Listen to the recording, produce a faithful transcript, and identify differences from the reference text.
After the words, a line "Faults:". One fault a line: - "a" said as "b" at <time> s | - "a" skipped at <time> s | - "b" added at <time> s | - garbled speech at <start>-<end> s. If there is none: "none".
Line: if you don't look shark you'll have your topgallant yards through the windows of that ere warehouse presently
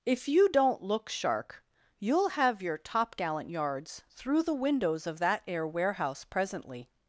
if you don't look shark you'll have your topgallant yards through the windows of that ere warehouse presently
Faults:
none